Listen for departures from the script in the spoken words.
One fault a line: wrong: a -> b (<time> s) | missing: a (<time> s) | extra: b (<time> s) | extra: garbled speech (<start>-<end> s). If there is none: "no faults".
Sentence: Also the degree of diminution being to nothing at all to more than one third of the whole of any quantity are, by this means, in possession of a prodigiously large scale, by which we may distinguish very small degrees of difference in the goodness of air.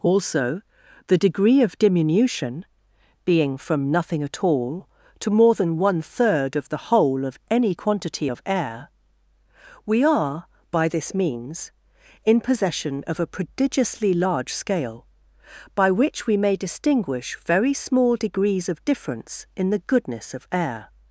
wrong: to -> from (3.6 s)
extra: of air we (8.3 s)